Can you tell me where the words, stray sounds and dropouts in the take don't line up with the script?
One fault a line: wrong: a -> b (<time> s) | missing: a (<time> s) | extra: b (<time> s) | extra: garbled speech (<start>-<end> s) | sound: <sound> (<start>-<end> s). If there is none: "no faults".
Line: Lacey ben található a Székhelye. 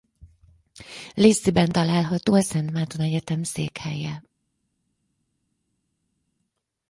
extra: Szent Márton Egyetem (2.4 s)